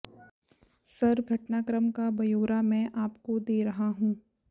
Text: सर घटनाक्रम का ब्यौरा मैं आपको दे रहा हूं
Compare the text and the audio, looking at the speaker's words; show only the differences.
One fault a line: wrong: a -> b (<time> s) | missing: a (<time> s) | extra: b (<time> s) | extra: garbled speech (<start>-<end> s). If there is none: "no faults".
no faults